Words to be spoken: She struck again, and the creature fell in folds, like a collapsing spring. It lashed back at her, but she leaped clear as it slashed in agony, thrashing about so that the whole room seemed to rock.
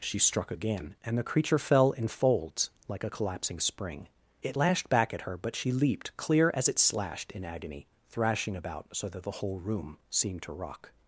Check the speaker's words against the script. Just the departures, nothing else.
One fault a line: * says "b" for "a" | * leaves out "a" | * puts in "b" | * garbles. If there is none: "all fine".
all fine